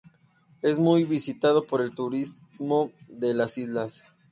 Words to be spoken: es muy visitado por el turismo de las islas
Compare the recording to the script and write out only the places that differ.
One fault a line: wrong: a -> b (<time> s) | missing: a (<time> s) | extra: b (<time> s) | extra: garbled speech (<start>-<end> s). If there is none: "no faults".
no faults